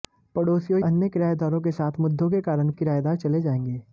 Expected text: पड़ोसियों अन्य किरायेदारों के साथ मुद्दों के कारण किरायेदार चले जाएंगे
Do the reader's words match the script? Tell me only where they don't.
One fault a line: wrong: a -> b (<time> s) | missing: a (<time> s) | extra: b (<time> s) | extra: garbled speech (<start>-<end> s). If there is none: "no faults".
no faults